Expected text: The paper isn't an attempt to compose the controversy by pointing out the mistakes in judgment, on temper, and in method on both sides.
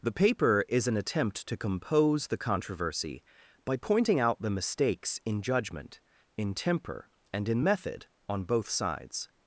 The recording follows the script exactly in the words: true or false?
false